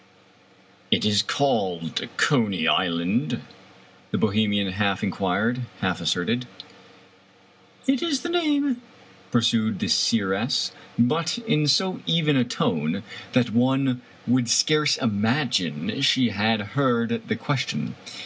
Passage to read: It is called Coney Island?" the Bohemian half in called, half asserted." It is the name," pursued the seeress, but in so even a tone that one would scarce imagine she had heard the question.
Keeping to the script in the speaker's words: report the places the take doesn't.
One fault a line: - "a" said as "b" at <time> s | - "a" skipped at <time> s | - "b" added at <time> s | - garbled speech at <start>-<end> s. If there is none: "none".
- "called" said as "quired" at 5.1 s